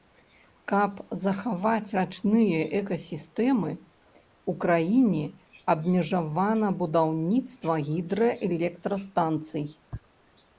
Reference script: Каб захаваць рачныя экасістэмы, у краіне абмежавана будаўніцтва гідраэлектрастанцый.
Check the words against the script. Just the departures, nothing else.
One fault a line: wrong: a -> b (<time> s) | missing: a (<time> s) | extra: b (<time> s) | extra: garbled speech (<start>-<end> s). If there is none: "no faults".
no faults